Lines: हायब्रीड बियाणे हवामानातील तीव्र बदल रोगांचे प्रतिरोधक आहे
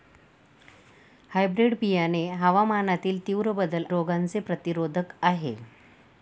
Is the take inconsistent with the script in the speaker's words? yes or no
no